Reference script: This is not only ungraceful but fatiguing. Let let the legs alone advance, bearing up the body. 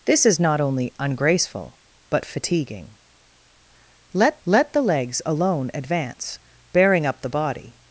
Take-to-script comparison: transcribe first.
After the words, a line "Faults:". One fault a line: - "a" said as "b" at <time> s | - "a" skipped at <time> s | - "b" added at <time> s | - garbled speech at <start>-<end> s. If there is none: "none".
This is not only ungraceful but fatiguing. Let let the legs alone advance, bearing up the body.
Faults:
none